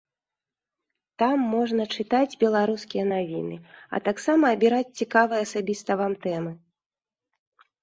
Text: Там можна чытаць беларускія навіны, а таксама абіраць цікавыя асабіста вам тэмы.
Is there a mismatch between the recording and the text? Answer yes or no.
no